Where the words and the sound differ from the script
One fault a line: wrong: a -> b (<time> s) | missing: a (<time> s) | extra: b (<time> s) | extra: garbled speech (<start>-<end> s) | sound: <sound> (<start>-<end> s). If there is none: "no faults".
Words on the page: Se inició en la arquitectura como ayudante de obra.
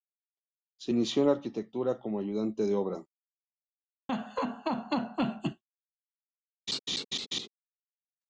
sound: laugh (4.1-5.6 s)
sound: laugh (6.7-7.5 s)